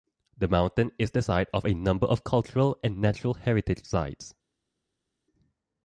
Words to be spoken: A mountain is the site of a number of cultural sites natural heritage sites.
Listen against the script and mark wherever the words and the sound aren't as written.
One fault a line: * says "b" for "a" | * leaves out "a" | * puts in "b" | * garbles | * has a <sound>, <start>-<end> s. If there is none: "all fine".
* says "The" for "A"
* says "and" for "sites"